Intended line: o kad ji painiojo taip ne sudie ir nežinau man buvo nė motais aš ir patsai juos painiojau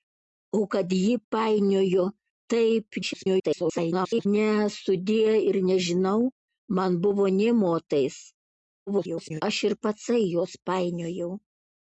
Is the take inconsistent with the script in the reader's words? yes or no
yes